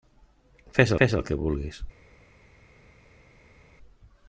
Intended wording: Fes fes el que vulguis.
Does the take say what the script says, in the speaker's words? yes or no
yes